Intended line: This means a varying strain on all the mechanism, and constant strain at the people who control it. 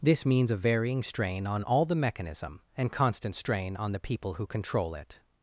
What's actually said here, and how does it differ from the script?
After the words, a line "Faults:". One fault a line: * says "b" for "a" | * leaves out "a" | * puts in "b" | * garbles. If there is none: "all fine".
This means a varying strain on all the mechanism, and constant strain on the people who control it.
Faults:
* says "on" for "at"